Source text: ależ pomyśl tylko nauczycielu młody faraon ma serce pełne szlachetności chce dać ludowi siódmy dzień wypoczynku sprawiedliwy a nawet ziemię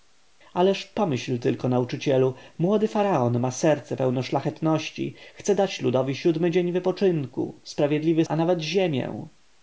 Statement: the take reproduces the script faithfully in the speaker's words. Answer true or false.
true